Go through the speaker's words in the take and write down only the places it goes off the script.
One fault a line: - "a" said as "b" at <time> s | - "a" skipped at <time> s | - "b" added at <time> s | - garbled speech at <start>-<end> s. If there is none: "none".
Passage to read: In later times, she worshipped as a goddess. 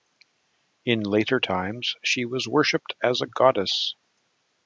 - "was" added at 2.2 s